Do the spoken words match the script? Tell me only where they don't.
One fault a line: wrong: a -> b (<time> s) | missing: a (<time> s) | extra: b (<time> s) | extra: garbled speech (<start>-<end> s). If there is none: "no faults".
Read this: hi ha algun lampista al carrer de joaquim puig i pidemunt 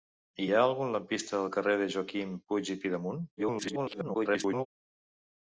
extra: garbled speech (3.4-4.7 s)